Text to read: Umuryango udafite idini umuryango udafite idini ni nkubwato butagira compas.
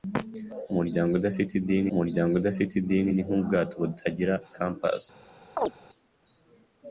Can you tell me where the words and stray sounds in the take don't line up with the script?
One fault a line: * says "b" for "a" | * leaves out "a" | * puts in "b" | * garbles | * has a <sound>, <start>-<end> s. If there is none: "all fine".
* has a chirp, 5.6-5.7 s